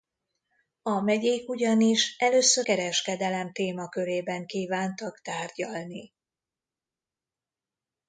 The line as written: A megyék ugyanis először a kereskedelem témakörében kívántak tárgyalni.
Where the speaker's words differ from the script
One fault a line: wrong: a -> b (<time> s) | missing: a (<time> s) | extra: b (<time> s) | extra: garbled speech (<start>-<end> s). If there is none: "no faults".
missing: a (2.7 s)